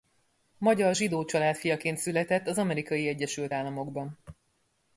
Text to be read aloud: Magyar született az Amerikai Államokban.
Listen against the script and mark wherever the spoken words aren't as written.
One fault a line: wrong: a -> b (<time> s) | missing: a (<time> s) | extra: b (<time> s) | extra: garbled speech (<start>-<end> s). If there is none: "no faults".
extra: zsidó család fiaként (0.9 s)
extra: Egyesült (3.1 s)